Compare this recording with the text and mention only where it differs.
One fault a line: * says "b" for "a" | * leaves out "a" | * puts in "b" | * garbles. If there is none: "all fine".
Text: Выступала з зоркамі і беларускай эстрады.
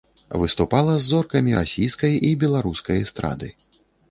* puts in "расійскай"